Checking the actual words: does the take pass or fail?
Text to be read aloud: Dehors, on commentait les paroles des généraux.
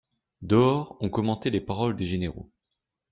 pass